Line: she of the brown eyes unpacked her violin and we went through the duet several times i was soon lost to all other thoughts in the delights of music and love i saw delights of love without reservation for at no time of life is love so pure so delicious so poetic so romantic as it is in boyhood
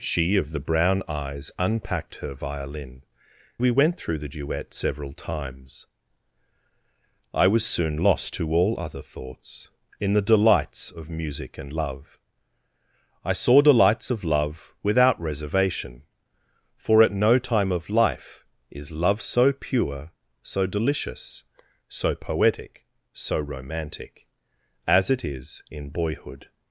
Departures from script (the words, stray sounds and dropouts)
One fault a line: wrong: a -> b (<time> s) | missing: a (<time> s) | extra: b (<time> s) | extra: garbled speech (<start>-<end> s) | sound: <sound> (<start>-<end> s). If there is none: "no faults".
missing: and (3.0 s)